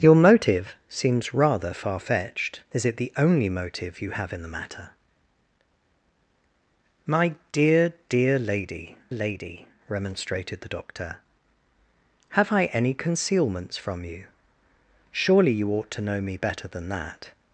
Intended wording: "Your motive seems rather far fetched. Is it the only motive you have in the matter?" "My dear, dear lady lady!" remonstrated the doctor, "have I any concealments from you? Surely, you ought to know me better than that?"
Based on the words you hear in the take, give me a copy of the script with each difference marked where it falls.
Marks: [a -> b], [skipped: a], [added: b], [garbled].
"Your motive seems rather far fetched. Is it the only motive you have in the matter?" "My dear, dear lady lady!" remonstrated the doctor, "have I any concealments from you? Surely, you ought to know me better than that?"